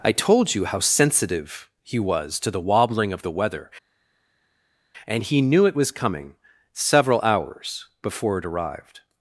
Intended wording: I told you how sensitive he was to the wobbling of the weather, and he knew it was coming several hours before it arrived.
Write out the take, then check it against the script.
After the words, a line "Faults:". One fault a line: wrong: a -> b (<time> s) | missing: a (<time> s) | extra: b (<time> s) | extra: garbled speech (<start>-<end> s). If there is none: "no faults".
I told you how sensitive he was to the wobbling of the weather, and he knew it was coming several hours before it arrived.
Faults:
no faults